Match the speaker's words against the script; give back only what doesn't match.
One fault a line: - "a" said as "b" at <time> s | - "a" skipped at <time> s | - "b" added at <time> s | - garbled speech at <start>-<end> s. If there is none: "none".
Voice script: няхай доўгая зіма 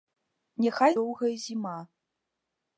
none